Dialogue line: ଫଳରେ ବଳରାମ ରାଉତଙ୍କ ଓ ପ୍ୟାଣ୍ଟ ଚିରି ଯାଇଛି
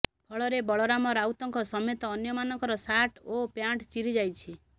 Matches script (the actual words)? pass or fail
fail